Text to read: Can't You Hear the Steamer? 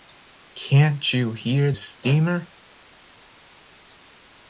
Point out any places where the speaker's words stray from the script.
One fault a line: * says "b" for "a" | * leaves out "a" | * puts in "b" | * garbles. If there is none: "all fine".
* leaves out "the"